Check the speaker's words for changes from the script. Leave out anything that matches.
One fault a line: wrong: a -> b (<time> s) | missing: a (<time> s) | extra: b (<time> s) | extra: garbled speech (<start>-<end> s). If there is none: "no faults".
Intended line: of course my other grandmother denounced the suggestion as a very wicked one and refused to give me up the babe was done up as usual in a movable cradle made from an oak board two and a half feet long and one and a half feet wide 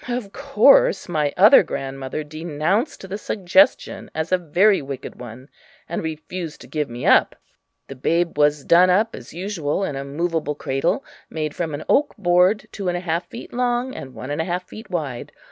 no faults